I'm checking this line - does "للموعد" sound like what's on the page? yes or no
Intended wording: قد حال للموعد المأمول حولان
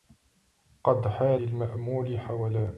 no